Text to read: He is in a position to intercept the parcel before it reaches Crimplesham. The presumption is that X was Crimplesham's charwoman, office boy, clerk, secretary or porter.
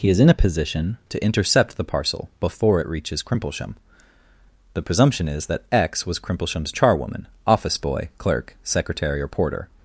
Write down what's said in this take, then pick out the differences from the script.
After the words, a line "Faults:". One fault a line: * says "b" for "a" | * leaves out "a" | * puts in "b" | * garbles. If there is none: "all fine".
He is in a position to intercept the parcel before it reaches Crimplesham. The presumption is that X was Crimplesham's charwoman, office boy, clerk, secretary or porter.
Faults:
all fine